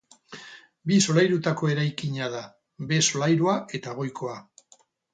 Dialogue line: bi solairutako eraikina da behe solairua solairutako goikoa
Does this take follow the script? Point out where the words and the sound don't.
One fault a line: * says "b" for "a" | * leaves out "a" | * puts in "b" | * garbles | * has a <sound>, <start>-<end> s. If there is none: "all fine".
* says "eta" for "solairutako"